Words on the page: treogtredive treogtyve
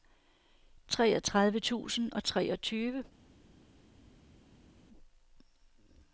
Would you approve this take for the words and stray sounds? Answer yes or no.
no